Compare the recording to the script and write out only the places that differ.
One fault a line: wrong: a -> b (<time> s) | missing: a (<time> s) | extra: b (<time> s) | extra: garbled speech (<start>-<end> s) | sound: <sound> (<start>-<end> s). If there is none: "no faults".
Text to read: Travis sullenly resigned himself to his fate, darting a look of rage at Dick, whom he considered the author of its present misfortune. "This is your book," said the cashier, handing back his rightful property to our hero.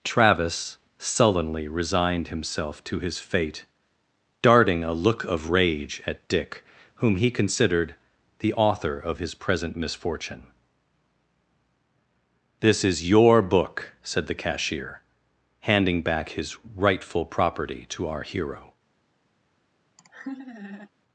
wrong: its -> his (9.2 s)
sound: laugh (20.0-20.9 s)